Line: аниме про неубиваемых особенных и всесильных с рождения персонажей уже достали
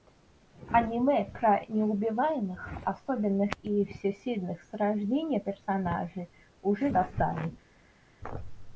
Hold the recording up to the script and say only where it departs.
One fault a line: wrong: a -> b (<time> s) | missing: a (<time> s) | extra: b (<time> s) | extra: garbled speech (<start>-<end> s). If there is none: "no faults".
no faults